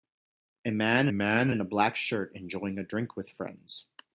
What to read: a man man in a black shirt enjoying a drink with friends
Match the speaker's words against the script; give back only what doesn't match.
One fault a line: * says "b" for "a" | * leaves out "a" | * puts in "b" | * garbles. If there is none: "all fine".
all fine